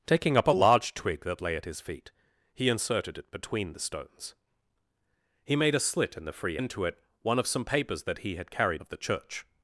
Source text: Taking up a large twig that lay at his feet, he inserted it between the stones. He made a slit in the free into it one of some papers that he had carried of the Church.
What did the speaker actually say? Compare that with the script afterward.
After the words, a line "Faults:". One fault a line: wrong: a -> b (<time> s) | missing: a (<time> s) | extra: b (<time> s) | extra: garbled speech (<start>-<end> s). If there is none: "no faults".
Taking up a large twig that lay at his feet, he inserted it between the stones. He made a slit in the free into it one of some papers that he had carried of the Church.
Faults:
no faults